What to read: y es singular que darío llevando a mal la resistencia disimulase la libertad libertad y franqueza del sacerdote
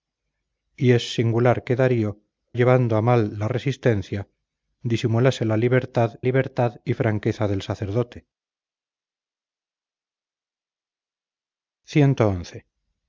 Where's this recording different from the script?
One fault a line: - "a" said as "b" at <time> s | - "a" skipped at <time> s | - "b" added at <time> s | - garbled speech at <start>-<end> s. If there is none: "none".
none